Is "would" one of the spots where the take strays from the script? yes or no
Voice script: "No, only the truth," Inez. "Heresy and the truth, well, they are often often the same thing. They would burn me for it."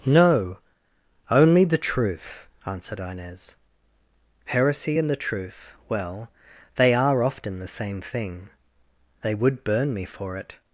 no